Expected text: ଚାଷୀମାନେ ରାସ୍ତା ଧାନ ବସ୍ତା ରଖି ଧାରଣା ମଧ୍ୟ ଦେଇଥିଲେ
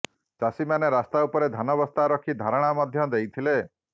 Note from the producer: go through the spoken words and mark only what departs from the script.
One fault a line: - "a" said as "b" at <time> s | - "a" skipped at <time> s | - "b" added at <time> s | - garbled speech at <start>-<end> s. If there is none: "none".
- "ଉପରେ" added at 1.3 s